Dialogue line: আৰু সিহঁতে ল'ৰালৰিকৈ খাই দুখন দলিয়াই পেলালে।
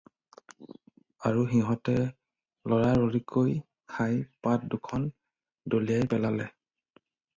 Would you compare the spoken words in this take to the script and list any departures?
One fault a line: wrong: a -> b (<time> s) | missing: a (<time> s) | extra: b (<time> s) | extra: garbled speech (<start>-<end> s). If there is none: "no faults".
extra: পাত (4.4 s)